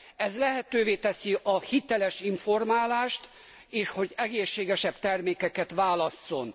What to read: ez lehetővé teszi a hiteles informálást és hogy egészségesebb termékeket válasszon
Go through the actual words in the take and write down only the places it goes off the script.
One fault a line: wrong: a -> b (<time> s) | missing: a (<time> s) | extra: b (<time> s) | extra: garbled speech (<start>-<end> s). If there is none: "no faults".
no faults